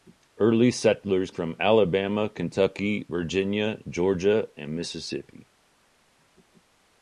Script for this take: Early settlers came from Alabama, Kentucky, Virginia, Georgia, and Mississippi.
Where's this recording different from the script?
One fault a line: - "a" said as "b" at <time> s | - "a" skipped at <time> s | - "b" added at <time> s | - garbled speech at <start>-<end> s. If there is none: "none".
- "came" skipped at 1.3 s